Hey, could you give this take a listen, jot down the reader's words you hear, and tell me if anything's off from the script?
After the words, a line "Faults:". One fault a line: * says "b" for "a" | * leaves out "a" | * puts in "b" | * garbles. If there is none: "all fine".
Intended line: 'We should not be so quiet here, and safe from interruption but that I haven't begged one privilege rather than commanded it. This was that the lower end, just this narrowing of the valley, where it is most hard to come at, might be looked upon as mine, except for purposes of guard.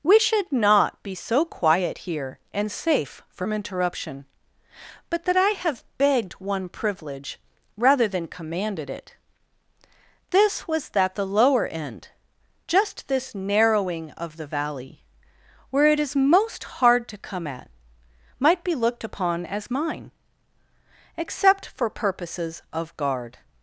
'We should not be so quiet here, and safe from interruption but that I have begged one privilege rather than commanded it. This was that the lower end, just this narrowing of the valley, where it is most hard to come at, might be looked upon as mine, except for purposes of guard.
Faults:
* says "have" for "haven't"